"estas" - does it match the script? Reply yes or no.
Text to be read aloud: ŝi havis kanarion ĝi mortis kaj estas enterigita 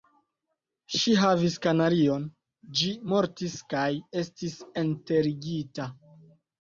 no